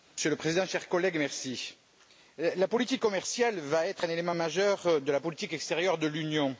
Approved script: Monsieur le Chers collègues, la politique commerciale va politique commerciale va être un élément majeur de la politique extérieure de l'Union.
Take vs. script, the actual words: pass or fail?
fail